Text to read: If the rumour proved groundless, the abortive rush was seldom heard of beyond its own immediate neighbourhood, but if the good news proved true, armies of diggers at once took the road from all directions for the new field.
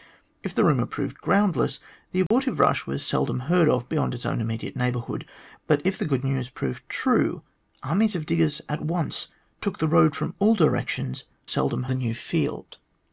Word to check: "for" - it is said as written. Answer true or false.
false